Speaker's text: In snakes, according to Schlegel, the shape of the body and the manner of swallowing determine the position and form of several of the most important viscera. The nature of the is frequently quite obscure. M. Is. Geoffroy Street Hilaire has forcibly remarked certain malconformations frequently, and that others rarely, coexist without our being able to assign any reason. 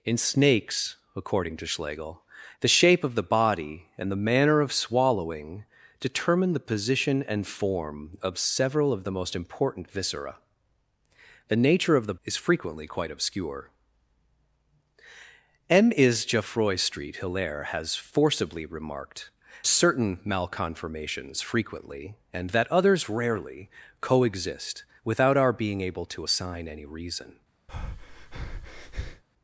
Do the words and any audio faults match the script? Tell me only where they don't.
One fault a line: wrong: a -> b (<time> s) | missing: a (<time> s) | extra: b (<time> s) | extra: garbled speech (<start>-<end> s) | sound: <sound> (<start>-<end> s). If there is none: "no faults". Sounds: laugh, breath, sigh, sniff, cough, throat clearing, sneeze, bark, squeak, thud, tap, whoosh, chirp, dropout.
sound: breath (27.7-29.2 s)